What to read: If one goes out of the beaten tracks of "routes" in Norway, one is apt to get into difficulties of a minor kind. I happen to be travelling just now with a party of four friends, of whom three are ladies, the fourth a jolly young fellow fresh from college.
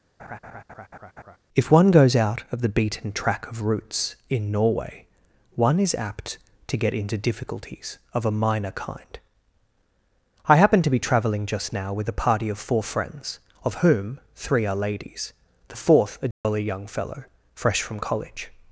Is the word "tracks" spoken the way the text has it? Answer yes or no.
no